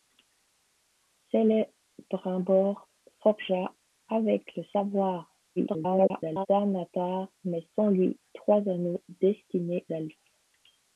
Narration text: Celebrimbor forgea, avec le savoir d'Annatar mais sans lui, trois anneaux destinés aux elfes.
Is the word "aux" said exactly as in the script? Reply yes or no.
no